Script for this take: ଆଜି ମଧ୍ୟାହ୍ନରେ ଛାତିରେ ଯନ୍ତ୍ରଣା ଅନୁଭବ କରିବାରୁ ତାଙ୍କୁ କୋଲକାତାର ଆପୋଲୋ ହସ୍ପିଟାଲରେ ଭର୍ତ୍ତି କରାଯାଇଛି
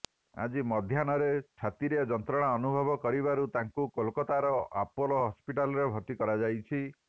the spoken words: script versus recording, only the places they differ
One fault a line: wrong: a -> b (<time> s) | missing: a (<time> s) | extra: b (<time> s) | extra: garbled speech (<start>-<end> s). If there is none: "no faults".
no faults